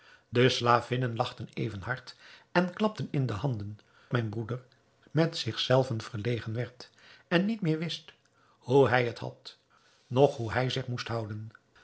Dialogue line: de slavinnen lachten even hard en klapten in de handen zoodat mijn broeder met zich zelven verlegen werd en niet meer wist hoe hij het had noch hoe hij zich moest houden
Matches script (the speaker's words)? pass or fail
fail